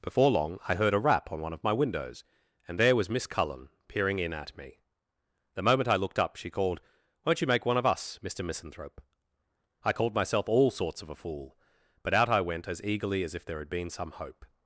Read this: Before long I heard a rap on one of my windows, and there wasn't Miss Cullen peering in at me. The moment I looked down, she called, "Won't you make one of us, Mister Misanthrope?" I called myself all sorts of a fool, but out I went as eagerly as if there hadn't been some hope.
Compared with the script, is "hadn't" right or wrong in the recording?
wrong